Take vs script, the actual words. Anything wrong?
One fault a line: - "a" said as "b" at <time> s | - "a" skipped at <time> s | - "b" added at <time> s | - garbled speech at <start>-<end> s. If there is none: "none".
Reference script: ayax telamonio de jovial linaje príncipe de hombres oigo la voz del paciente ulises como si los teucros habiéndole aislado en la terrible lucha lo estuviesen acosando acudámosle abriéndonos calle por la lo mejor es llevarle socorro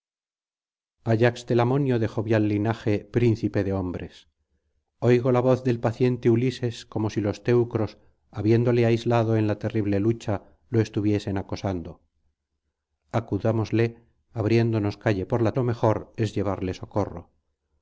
none